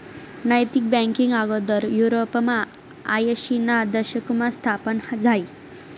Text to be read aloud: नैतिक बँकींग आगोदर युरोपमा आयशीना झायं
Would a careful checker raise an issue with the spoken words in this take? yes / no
yes